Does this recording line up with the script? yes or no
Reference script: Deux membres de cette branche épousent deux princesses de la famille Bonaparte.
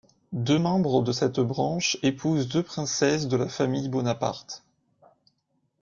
yes